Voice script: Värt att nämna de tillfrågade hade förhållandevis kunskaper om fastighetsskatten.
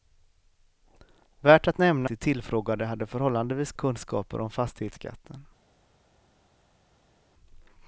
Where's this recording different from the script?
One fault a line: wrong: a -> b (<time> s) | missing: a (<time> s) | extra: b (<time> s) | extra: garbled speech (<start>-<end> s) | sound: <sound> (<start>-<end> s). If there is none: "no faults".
no faults